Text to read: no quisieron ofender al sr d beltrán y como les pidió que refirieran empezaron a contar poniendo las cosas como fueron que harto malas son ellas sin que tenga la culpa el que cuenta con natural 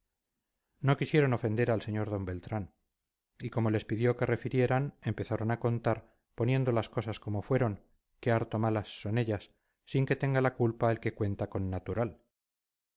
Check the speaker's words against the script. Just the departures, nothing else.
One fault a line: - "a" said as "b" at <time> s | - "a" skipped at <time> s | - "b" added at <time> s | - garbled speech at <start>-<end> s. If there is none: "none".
none